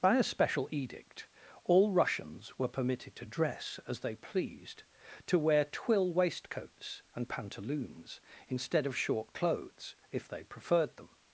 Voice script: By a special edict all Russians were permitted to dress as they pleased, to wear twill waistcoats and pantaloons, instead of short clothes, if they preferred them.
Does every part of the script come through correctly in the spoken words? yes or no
yes